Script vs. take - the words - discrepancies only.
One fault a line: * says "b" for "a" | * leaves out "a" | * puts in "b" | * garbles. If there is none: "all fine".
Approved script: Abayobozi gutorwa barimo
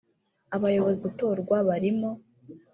all fine